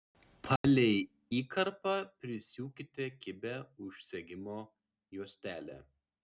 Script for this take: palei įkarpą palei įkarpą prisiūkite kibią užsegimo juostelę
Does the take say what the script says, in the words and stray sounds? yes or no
no